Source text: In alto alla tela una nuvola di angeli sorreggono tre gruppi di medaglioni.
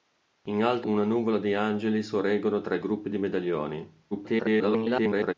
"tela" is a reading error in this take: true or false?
true